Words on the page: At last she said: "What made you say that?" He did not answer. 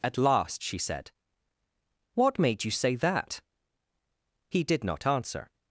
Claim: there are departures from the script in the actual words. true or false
false